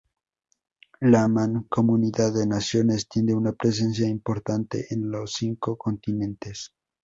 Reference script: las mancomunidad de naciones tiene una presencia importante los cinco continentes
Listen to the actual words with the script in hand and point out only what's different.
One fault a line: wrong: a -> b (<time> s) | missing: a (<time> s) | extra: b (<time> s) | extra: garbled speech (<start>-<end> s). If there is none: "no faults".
wrong: las -> la (1.0 s)
extra: en (4.9 s)